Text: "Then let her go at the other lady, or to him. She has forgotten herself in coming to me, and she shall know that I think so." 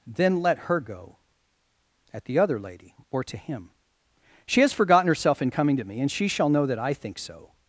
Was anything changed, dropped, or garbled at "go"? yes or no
no